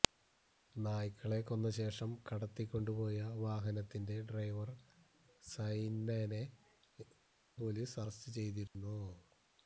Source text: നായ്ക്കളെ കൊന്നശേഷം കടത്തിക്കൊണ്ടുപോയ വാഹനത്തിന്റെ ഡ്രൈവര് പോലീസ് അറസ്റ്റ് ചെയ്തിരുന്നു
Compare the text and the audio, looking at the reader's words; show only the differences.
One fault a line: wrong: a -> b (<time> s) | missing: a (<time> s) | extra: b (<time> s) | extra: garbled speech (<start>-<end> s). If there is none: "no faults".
no faults